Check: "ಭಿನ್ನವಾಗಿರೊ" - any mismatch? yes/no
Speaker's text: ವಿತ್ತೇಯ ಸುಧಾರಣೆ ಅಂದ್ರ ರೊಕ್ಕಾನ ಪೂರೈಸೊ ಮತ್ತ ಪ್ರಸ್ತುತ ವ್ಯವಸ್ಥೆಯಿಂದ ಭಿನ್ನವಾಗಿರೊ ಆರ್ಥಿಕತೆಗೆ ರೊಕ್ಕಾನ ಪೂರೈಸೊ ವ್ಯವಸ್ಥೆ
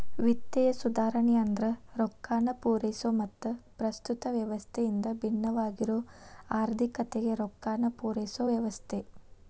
no